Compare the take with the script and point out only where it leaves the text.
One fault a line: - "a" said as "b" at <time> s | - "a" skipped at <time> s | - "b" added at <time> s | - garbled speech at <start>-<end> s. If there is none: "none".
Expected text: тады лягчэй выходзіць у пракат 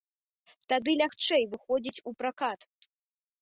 none